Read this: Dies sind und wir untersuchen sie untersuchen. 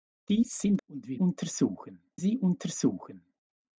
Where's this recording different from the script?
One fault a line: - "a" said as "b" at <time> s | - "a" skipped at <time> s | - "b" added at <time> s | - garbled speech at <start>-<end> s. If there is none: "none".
none